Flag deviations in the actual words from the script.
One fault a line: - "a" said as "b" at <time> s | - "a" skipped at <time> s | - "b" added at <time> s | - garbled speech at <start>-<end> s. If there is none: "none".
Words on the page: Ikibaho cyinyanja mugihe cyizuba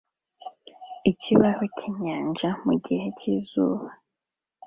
none